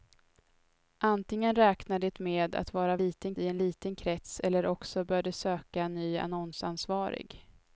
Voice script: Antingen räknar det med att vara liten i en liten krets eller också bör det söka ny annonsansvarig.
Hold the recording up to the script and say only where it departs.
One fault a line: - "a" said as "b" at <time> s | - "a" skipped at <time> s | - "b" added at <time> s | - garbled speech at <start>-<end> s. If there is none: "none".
none